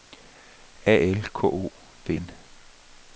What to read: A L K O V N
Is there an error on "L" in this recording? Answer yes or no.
no